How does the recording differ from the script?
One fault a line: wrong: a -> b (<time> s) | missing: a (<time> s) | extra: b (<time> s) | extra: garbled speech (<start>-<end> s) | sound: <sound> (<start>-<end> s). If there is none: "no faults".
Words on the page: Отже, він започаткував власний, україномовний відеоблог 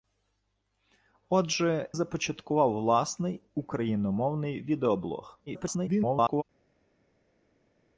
missing: він (1.9 s)
extra: garbled speech (5.5-6.4 s)